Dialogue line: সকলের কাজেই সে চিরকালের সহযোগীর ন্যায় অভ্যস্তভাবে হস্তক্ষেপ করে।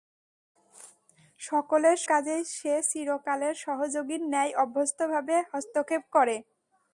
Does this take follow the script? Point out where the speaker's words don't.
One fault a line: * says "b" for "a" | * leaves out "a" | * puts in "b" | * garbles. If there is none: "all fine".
all fine